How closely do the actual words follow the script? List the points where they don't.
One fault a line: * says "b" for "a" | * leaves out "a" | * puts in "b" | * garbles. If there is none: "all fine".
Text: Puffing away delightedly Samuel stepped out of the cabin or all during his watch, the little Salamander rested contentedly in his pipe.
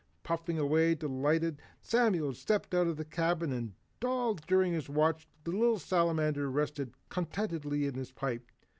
* says "and" for "or"